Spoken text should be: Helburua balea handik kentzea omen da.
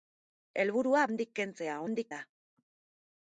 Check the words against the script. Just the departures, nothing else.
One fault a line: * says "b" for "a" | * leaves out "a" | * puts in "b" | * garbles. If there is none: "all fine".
* leaves out "balea"
* says "handik" for "omen"